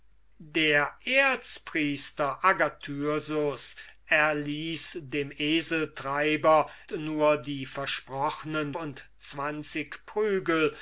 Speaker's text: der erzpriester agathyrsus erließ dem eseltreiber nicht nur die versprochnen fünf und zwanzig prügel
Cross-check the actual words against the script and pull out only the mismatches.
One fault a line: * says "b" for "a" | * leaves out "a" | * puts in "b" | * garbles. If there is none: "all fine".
* leaves out "nicht"
* leaves out "fünf"